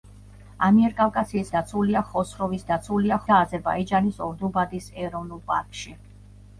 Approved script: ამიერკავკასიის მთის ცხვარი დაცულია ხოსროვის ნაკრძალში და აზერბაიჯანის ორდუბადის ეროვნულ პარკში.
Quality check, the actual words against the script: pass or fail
fail